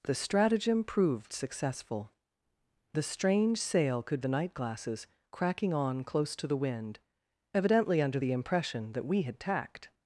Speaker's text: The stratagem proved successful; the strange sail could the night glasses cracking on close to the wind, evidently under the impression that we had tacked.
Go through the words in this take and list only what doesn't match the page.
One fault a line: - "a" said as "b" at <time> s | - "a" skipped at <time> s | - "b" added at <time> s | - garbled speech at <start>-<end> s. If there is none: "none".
none